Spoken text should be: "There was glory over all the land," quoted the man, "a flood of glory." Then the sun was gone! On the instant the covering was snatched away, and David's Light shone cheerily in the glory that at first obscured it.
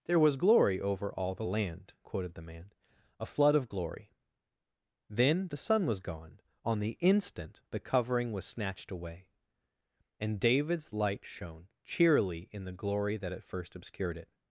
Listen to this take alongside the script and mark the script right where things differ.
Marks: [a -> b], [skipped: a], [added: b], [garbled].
"There was glory over all the land," quoted the man, "a flood of glory." Then the sun was gone! On the instant the covering was snatched away, and David's Light shone cheerily in the glory that at first obscured it.